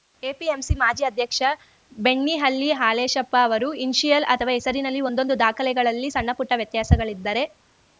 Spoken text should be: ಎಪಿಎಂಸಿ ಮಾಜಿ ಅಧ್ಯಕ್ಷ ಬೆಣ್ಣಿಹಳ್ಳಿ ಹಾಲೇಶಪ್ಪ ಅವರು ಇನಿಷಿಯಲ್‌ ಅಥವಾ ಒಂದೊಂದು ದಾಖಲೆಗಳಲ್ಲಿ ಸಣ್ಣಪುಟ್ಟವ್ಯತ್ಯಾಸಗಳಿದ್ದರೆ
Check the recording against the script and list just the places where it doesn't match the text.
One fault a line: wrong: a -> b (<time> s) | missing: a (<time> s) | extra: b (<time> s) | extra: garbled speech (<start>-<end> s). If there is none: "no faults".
extra: ಹೆಸರಿನಲ್ಲಿ (4.6 s)